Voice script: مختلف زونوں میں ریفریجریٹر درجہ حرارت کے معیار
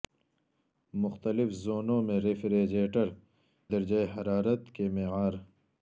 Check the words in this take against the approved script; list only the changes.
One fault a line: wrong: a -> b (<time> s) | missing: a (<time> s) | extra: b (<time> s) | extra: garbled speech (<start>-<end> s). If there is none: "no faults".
no faults